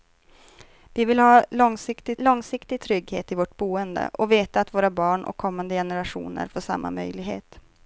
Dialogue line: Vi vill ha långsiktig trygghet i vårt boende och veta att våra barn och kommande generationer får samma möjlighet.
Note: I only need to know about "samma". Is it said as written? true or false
true